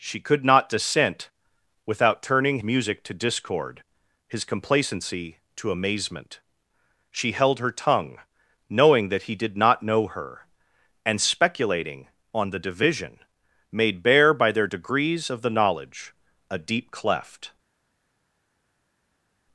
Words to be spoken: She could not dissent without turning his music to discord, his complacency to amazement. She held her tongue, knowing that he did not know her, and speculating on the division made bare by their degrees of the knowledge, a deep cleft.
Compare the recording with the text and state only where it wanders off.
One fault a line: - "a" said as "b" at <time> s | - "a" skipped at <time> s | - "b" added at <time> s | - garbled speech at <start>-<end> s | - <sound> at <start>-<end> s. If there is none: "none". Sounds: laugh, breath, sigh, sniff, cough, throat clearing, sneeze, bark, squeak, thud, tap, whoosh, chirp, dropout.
- "his" skipped at 2.6 s